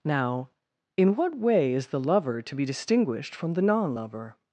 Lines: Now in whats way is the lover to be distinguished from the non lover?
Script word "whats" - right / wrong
wrong